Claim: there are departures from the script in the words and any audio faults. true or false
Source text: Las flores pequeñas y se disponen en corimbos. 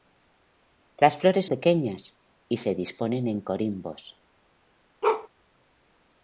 true